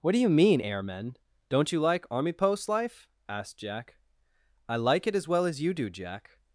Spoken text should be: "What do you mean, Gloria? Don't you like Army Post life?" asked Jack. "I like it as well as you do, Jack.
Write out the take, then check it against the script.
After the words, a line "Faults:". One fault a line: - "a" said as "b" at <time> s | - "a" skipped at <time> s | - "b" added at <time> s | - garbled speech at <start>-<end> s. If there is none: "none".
"What do you mean, Airmen? Don't you like Army Post life?" asked Jack. "I like it as well as you do, Jack.
Faults:
- "Gloria" said as "Airmen" at 0.6 s